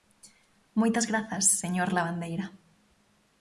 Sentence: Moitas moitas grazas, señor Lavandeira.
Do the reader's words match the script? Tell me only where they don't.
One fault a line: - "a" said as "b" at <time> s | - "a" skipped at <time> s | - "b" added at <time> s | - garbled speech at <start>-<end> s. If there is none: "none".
- "moitas" skipped at 1.1 s